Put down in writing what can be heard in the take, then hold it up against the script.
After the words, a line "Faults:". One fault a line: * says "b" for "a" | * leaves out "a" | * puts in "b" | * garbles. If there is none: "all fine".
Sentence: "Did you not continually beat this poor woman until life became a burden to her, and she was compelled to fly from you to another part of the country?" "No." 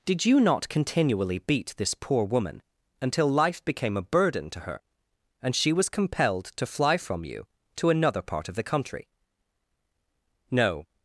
"Did you not continually beat this poor woman until life became a burden to her, and she was compelled to fly from you to another part of the country?" "No."
Faults:
all fine